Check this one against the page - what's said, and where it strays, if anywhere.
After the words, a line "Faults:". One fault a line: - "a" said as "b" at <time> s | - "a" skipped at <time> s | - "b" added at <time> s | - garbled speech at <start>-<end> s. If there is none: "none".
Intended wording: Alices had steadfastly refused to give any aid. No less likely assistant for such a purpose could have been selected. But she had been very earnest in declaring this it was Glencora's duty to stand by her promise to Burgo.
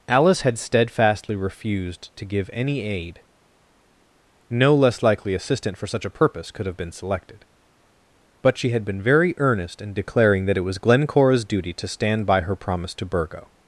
Alice had steadfastly refused to give any aid. No less likely assistant for such a purpose could have been selected. But she had been very earnest in declaring that it was Glencora's duty to stand by her promise to Burgo.
Faults:
- "Alices" said as "Alice" at 0.1 s
- "this" said as "that" at 10.4 s